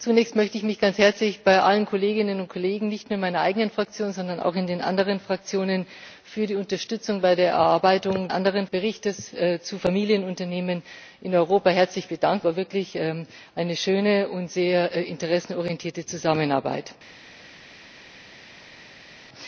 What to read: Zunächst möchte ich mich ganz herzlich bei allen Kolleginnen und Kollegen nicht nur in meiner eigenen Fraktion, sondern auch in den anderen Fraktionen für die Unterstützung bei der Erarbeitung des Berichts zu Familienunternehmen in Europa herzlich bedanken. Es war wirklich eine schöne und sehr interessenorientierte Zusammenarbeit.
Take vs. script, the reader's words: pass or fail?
fail